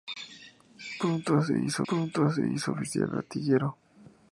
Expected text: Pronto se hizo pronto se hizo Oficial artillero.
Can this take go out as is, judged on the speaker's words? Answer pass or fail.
pass